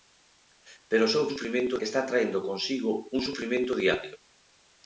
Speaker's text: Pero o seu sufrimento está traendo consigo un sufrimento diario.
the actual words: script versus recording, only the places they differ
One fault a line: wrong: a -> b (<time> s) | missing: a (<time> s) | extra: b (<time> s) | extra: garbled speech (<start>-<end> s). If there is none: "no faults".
no faults